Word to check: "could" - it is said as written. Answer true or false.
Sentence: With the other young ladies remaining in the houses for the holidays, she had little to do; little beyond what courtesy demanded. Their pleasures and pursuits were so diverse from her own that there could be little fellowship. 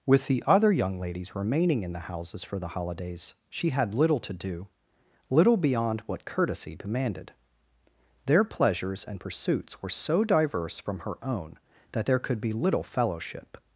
true